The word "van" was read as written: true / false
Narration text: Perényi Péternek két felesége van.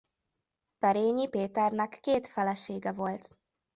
false